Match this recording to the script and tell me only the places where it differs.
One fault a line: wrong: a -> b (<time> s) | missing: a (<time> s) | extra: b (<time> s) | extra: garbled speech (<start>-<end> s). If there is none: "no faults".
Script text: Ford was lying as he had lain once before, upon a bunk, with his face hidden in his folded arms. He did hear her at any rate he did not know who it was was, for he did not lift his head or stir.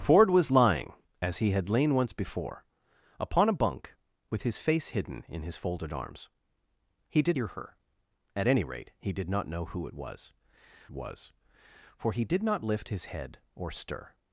no faults